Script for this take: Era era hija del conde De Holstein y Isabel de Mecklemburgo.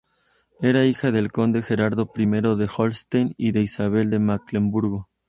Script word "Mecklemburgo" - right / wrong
right